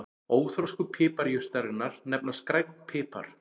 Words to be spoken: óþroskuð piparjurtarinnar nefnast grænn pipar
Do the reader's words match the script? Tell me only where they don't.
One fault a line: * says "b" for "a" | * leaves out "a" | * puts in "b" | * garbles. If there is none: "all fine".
all fine